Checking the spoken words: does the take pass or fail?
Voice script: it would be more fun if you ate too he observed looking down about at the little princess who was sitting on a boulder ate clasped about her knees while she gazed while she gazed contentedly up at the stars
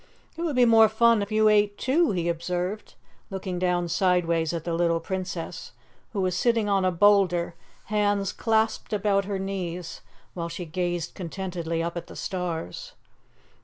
fail